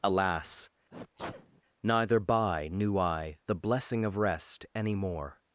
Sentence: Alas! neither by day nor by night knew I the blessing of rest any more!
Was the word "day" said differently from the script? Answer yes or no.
yes